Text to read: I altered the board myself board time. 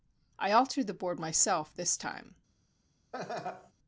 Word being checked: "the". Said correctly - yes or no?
yes